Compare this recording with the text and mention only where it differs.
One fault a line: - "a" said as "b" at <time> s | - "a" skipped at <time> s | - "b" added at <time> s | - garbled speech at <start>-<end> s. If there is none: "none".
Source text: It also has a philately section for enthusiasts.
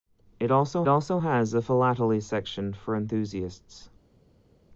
- "also" added at 0.9 s